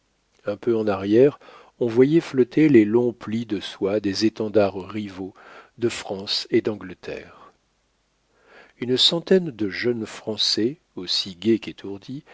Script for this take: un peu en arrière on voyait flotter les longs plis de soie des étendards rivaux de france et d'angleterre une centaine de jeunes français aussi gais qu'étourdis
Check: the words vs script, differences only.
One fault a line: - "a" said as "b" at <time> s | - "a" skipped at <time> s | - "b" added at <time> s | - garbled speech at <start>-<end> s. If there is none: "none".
none